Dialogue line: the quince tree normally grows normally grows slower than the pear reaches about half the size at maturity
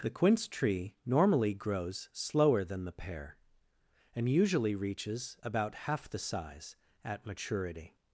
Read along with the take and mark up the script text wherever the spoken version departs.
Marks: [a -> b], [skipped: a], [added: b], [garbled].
the quince tree normally grows [skipped: normally grows] slower than the pear [added: and usually] reaches about half the size at maturity